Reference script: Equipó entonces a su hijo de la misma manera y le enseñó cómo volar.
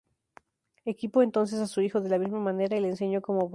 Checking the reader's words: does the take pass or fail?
pass